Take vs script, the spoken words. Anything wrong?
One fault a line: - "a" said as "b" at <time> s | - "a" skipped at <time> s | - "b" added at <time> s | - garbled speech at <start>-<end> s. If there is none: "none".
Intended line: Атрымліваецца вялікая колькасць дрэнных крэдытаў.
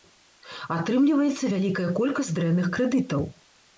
none